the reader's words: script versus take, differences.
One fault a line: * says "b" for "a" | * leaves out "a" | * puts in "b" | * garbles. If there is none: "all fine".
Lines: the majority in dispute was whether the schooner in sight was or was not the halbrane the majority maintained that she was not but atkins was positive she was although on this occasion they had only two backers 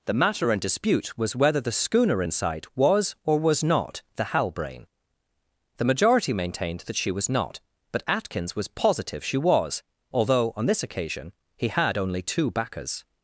* says "matter" for "majority"
* says "he" for "they"